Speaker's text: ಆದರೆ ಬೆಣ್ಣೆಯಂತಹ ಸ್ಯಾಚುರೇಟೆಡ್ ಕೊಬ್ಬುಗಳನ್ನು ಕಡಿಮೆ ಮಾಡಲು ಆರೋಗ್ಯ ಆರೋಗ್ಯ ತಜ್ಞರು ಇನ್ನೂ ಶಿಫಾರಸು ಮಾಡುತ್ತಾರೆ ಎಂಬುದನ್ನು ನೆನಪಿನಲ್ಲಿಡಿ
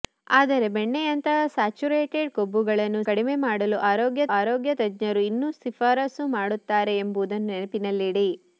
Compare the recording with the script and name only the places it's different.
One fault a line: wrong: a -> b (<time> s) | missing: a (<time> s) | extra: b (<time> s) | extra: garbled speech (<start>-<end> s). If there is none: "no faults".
no faults